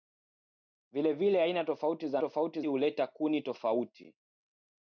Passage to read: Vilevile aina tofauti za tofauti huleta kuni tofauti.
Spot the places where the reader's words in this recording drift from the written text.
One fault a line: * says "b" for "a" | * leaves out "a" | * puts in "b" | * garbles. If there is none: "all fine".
all fine